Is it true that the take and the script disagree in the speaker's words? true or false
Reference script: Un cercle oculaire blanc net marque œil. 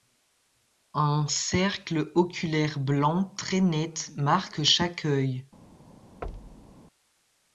true